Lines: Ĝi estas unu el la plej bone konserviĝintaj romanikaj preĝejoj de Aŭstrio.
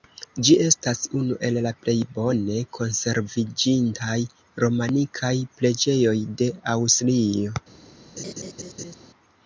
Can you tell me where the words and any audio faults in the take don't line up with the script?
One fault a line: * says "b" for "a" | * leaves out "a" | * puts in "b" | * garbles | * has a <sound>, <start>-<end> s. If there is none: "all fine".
* has a laugh, 8.2-8.9 s